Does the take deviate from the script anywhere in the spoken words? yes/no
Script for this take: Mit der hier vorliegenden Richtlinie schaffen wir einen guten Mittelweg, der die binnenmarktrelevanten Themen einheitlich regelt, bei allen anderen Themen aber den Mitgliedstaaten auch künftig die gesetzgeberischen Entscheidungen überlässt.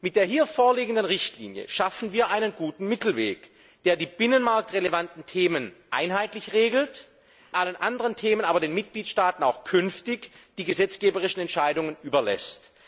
yes